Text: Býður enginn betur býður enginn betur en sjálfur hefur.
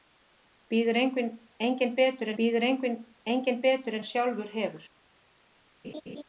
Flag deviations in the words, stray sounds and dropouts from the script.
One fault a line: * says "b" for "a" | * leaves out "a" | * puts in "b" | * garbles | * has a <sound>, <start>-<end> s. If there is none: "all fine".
* has a laugh, 5.8-6.2 s